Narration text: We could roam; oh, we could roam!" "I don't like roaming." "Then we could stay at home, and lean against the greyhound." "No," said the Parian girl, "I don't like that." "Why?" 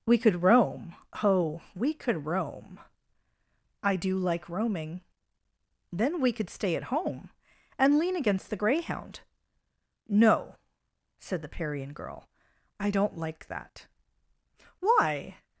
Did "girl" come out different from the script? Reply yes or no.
no